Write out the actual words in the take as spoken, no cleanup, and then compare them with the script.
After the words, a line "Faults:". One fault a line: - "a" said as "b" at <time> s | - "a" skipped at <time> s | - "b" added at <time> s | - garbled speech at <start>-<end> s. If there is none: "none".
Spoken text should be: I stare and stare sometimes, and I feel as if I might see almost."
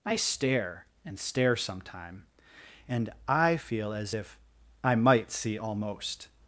I stare and stare sometime, and I feel as if I might see almost."
Faults:
- "sometimes" said as "sometime" at 1.6 s